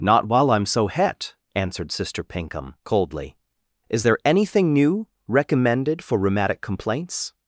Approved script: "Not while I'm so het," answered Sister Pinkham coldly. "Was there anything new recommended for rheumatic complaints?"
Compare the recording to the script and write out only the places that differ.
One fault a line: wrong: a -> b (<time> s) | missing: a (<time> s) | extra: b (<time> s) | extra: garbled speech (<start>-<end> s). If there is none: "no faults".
wrong: Was -> Is (3.9 s)